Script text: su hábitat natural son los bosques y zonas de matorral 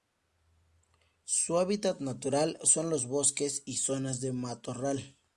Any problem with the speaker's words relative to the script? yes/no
no